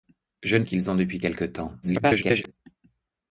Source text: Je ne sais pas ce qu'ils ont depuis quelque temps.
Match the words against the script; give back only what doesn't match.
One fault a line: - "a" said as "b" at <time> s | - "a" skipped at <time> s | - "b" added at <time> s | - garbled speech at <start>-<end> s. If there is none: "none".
- "sais pas ce" skipped at 0.6 s
- garbled speech at 1.8-2.5 s